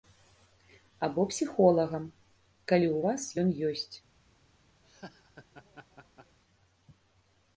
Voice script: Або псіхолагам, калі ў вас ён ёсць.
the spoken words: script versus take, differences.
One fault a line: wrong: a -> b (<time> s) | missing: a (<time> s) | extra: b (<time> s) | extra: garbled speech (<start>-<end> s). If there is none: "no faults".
no faults